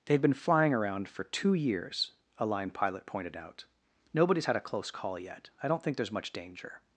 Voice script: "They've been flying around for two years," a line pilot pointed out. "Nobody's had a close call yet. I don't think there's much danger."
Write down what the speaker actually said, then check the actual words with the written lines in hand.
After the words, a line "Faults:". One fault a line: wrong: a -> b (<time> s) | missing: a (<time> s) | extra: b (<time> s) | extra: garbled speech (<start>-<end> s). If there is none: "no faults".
"They've been flying around for two years," a line pilot pointed out. "Nobody's had a close call yet. I don't think there's much danger."
Faults:
no faults